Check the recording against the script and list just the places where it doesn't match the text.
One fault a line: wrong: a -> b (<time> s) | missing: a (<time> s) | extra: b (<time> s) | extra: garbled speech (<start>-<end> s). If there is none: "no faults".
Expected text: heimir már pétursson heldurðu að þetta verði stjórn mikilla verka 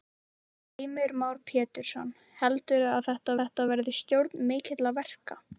extra: þetta (3.4 s)